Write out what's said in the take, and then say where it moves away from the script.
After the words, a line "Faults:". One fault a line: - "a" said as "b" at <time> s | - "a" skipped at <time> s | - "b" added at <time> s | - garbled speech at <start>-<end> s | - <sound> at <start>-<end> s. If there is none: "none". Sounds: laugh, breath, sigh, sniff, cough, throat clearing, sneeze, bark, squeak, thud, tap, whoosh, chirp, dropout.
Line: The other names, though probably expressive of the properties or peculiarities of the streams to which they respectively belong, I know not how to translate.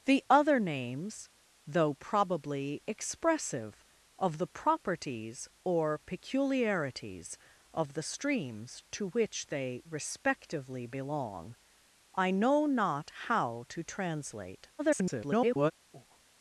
The other names, though probably expressive of the properties or peculiarities of the streams to which they respectively belong, I know not how to translate. [garbled]
Faults:
- garbled speech at 14.8-15.7 s
- breath at 15.9-16.2 s